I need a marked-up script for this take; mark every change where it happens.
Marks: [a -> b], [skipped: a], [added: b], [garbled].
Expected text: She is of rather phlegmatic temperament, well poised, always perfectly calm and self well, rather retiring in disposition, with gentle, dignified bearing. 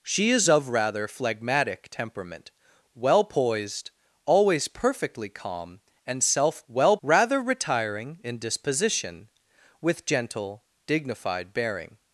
She is of rather phlegmatic temperament, well poised, always perfectly calm and self well, rather retiring in disposition, with gentle, dignified bearing.